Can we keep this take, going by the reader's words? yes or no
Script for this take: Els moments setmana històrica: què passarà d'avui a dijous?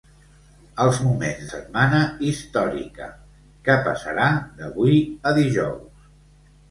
yes